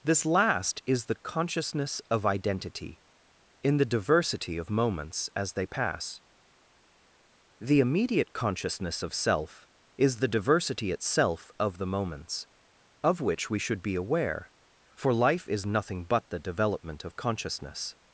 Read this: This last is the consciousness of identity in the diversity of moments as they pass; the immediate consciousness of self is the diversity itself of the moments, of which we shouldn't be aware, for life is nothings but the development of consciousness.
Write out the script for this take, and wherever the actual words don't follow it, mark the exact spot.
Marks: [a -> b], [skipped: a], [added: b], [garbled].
This last is the consciousness of identity in the diversity of moments as they pass; the immediate consciousness of self is the diversity itself of the moments, of which we [shouldn't -> should] be aware, for life is [nothings -> nothing] but the development of consciousness.